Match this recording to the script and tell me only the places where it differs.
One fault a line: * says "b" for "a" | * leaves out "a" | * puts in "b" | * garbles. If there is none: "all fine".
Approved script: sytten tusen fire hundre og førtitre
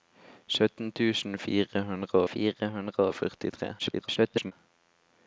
* puts in "fire hundre"
* garbles